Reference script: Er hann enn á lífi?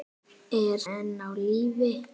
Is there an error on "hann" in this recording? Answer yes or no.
yes